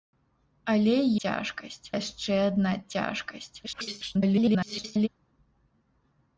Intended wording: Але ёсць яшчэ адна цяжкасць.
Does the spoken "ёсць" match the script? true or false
false